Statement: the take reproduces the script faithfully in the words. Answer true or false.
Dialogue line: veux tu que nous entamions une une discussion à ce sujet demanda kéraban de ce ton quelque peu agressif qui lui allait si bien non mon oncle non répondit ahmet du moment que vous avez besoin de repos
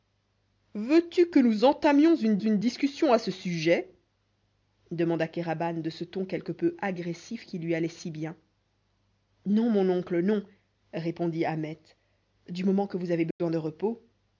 true